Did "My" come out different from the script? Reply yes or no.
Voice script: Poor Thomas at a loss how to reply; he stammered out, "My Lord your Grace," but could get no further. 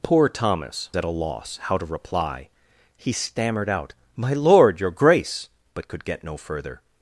no